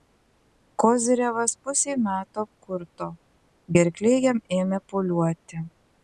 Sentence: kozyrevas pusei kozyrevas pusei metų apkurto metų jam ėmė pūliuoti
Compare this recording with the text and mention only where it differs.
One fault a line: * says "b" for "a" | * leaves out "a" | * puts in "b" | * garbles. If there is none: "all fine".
* leaves out "kozyrevas pusei"
* says "gerklė" for "metų"